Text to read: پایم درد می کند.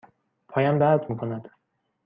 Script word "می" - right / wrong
right